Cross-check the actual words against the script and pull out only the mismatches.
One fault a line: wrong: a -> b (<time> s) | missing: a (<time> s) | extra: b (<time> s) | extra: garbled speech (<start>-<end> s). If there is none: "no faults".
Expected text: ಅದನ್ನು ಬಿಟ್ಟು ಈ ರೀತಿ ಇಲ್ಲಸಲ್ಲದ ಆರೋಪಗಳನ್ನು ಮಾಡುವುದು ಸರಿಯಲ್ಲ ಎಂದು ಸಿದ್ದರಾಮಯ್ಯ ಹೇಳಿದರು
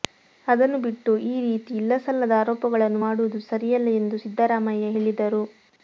no faults